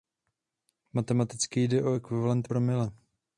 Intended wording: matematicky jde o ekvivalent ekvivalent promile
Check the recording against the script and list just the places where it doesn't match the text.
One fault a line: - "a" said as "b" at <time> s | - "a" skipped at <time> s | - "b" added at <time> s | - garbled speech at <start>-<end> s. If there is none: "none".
- "ekvivalent" skipped at 2.5 s